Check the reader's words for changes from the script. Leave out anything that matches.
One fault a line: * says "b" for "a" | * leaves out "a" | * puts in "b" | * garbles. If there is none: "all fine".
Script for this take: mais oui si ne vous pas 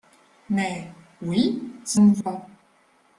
all fine